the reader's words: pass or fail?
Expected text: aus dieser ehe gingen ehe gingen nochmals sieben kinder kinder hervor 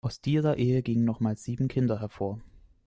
fail